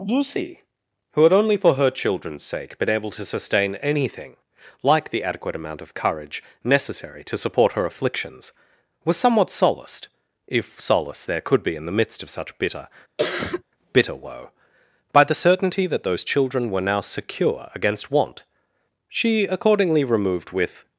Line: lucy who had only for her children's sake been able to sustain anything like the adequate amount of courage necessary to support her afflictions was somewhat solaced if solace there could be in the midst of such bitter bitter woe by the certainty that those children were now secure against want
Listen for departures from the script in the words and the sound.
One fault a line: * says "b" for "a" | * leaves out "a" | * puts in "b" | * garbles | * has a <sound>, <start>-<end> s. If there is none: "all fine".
* has a cough, 13.2-13.6 s
* puts in "she accordingly removed with"